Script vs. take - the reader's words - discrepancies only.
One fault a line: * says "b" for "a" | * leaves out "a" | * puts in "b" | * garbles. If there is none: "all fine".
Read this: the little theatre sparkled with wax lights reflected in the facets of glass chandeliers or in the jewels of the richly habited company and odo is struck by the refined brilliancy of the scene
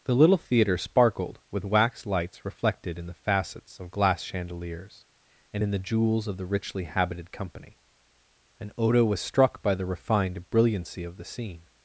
* says "and" for "or"
* says "was" for "is"